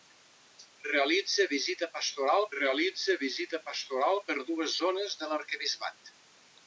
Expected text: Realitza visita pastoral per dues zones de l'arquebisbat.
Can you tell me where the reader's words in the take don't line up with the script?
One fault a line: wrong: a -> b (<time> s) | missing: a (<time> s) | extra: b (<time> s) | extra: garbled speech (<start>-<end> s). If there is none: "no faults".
extra: realitza visita pastoral (2.6 s)